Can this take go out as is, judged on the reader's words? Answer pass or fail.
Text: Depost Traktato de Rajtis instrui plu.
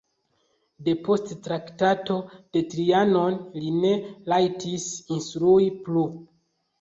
fail